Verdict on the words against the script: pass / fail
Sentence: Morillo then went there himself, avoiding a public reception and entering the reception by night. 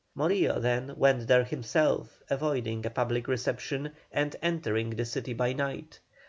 fail